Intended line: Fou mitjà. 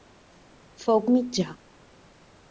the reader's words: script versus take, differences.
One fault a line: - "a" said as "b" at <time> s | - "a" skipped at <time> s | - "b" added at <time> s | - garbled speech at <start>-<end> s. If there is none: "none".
none